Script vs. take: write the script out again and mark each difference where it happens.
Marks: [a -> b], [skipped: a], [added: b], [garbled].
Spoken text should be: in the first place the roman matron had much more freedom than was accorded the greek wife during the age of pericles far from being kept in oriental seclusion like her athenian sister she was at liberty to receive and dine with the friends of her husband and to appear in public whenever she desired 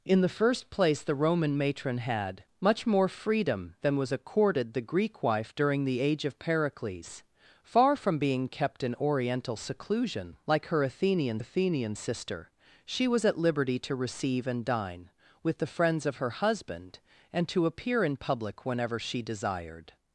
in the first place the roman matron had much more freedom than was accorded the greek wife during the age of pericles far from being kept in oriental seclusion like her athenian [added: athenian] sister she was at liberty to receive and dine with the friends of her husband and to appear in public whenever she desired